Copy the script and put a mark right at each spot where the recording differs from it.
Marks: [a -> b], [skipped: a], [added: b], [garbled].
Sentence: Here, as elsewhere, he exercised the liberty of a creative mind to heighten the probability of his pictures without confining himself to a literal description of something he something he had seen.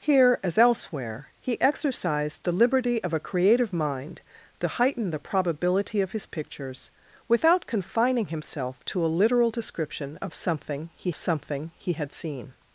Here, as elsewhere, he exercised the liberty of a creative mind to heighten the probability of his pictures without confining himself to a literal description of something he something he had seen.